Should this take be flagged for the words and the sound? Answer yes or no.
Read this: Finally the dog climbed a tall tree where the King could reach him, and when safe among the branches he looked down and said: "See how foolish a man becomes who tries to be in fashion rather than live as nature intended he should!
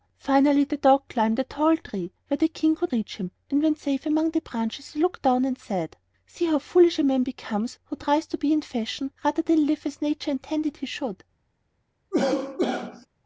yes